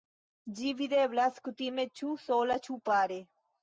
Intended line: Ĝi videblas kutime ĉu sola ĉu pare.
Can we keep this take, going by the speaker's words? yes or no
yes